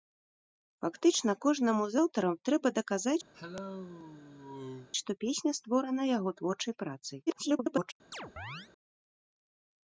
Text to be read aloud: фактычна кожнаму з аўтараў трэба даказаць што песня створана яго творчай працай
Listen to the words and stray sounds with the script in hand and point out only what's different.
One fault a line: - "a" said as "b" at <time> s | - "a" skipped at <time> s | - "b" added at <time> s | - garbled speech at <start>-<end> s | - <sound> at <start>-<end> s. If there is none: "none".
- cough at 3.3-4.9 s
- garbled speech at 7.3-7.9 s
- chirp at 8.1-8.7 s